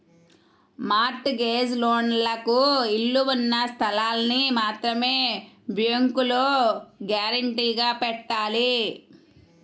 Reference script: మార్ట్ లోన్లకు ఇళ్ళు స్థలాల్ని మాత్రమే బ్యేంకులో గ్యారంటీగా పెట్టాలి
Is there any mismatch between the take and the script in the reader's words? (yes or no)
yes